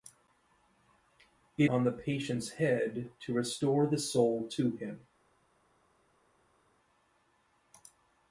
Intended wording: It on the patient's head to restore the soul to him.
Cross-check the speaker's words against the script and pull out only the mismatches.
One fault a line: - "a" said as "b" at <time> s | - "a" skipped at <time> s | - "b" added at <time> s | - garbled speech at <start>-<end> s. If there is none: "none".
none